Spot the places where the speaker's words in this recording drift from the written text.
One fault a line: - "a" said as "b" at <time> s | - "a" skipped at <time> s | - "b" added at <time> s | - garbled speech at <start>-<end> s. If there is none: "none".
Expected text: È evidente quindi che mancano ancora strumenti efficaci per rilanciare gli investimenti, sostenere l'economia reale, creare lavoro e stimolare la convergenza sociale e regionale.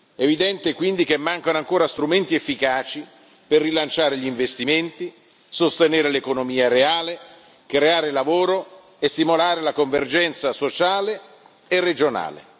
none